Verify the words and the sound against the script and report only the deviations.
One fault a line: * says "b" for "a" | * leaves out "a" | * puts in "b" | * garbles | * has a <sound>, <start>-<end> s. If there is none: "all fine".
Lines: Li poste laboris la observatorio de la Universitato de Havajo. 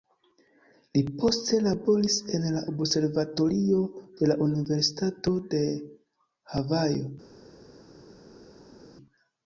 * puts in "en"